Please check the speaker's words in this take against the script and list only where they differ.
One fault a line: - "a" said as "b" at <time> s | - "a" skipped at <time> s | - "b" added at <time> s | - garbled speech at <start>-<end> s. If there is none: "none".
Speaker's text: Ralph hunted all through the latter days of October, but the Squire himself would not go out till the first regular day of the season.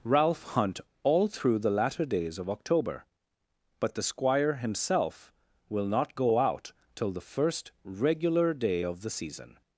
- "hunted" said as "hunt" at 0.4 s
- "would" said as "will" at 5.7 s